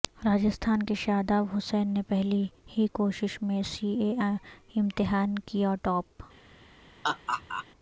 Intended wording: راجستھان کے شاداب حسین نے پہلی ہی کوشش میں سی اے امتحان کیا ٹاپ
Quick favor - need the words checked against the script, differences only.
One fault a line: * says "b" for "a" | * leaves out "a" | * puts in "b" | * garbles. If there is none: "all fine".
all fine